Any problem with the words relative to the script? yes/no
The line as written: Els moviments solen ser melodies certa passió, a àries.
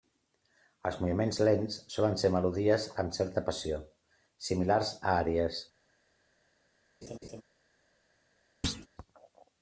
yes